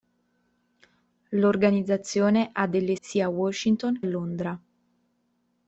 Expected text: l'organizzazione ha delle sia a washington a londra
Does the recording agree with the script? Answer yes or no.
yes